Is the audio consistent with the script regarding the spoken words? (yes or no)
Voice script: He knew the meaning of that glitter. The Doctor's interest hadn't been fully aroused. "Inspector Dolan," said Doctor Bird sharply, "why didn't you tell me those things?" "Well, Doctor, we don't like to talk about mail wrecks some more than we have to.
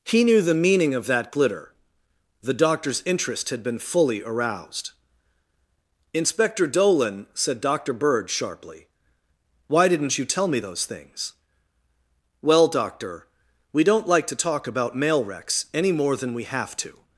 no